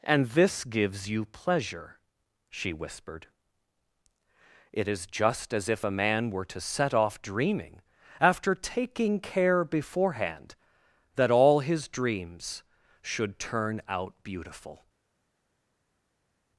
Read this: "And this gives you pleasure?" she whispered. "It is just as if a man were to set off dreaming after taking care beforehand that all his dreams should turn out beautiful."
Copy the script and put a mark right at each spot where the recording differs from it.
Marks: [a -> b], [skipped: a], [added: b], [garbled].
"And this gives you pleasure?" she whispered. "It is just as if a man were to set off dreaming after taking care beforehand that all his dreams should turn out beautiful."